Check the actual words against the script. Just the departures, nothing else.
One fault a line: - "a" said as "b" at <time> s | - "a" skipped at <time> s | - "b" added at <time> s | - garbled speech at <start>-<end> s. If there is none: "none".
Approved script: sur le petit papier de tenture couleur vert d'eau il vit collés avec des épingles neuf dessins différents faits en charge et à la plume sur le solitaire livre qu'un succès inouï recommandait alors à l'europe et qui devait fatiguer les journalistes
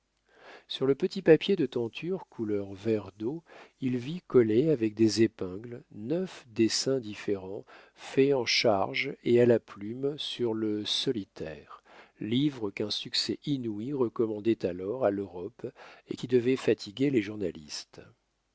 none